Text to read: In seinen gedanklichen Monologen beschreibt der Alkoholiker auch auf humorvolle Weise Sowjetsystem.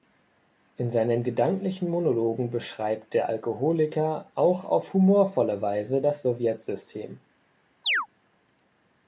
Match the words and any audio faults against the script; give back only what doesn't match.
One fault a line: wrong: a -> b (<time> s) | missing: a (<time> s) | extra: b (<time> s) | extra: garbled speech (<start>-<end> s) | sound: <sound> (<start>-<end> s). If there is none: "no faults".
extra: das (6.0 s)
sound: chirp (7.8-8.1 s)